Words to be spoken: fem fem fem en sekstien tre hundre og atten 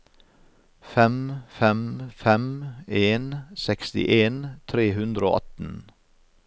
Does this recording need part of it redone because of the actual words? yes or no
no